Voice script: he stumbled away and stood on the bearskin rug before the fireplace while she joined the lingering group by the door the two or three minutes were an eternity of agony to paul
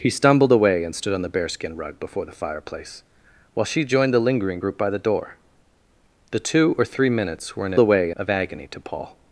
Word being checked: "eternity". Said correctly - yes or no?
no